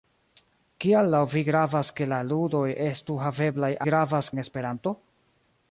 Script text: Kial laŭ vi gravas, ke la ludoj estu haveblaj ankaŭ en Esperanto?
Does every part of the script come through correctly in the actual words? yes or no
no